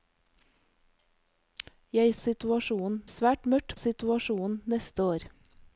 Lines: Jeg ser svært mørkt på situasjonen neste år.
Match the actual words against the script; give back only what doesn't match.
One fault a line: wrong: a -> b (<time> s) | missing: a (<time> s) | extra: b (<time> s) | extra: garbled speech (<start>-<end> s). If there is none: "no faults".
wrong: ser -> situasjonen (2.2 s)
missing: på (3.8 s)